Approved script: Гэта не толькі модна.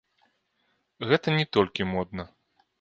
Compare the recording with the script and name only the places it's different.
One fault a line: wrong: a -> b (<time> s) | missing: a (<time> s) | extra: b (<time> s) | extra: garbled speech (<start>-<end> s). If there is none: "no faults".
no faults